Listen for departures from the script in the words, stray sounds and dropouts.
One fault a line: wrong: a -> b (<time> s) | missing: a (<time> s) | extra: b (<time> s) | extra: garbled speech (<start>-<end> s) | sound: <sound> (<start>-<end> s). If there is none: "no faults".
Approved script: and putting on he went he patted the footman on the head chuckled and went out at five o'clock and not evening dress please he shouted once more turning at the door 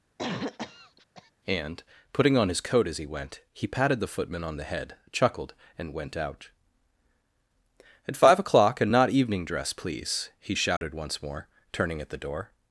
sound: cough (0.2-1.3 s)
extra: his coat as (2.5 s)
sound: dropout (10.8-10.8 s)